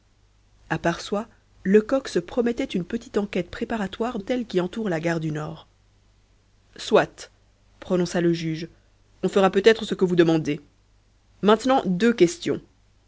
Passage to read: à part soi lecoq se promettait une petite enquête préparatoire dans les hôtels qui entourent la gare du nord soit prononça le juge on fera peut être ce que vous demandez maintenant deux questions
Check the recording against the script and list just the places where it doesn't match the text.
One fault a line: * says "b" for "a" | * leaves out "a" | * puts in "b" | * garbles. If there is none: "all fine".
* leaves out "dans les"